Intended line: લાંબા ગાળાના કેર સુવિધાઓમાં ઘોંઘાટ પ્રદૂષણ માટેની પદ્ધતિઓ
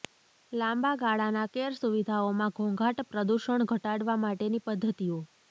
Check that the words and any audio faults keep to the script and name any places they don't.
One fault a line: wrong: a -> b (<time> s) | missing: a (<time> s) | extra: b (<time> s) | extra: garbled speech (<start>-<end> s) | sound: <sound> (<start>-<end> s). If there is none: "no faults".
extra: ઘટાડવા (3.7 s)